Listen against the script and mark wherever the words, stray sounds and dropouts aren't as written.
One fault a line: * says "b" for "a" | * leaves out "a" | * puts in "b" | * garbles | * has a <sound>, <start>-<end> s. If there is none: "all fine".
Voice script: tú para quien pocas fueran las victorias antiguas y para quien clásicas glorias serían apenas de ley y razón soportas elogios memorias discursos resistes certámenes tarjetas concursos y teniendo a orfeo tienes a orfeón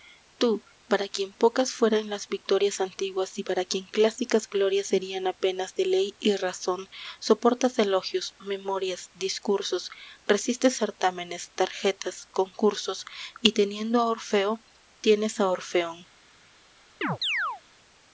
* has a chirp, 17.0-17.6 s